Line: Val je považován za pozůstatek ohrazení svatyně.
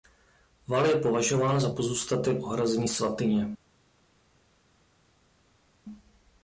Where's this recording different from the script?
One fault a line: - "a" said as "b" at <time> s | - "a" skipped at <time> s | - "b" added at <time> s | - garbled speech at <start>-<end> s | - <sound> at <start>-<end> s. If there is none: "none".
none